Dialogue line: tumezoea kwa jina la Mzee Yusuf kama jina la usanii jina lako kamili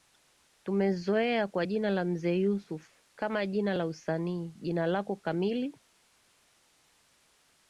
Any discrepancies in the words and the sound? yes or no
no